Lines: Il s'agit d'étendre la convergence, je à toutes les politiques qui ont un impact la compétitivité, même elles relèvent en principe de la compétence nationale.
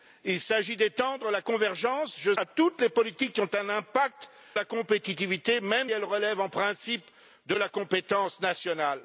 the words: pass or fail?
pass